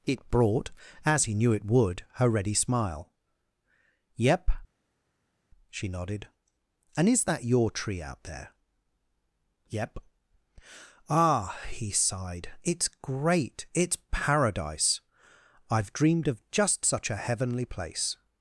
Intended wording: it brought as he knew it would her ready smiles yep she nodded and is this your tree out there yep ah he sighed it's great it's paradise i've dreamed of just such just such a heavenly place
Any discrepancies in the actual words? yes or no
yes